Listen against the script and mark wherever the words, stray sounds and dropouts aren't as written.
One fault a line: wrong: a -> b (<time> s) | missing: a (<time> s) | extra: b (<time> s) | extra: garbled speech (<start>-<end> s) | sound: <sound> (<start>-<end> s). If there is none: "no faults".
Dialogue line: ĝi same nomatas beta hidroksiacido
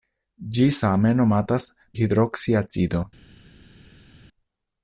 missing: beta (1.7 s)